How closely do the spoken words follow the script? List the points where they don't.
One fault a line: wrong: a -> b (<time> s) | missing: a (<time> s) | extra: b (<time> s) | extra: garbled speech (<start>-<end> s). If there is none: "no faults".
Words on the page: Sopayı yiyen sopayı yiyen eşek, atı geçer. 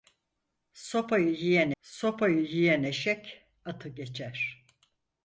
no faults